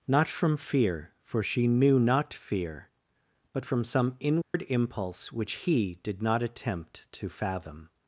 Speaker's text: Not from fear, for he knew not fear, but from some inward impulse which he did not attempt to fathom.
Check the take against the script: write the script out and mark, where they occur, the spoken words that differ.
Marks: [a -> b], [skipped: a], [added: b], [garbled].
Not from fear, for [he -> she] knew not fear, but from some inward impulse which he did not attempt to fathom.